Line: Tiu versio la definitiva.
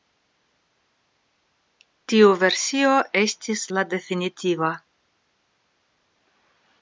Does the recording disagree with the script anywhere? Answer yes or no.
yes